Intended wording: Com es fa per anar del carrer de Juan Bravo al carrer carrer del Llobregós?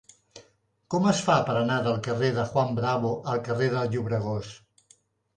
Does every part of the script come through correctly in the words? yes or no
no